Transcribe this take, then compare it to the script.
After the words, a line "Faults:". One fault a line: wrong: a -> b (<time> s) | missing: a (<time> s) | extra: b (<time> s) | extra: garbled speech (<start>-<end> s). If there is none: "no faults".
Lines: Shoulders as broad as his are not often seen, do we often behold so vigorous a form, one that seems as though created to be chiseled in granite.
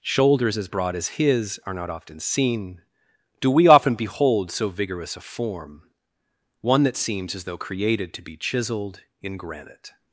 Shoulders as broad as his are not often seen, do we often behold so vigorous a form, one that seems as though created to be chiseled in granite.
Faults:
no faults